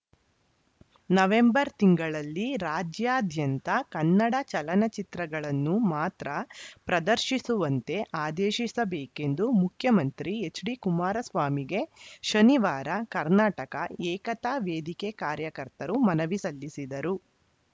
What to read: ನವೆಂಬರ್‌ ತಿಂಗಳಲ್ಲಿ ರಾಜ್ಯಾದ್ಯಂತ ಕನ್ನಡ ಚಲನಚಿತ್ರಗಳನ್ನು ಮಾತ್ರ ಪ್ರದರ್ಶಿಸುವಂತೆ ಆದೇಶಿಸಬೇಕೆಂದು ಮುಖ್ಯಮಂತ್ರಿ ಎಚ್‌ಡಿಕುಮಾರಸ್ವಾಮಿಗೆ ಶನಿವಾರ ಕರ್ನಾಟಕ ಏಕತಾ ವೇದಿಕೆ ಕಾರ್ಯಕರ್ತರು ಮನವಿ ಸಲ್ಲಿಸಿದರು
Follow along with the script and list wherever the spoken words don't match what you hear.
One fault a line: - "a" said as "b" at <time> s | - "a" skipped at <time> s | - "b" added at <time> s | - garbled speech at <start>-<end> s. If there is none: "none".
none